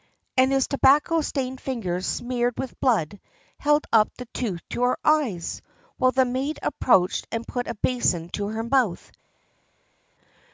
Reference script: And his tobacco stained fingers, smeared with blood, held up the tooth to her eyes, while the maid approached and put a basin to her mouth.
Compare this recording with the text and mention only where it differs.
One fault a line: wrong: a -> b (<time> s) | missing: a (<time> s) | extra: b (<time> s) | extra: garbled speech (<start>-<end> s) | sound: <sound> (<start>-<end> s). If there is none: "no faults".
no faults